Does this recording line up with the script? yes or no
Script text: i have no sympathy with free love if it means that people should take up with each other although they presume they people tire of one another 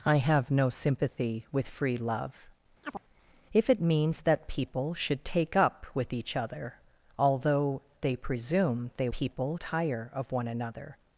yes